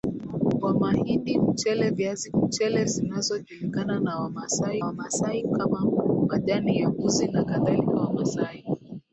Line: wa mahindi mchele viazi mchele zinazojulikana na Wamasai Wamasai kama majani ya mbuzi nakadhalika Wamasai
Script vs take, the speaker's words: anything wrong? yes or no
no